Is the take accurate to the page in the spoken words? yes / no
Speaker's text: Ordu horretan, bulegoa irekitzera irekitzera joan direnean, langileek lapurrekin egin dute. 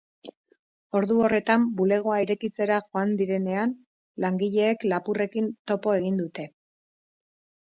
no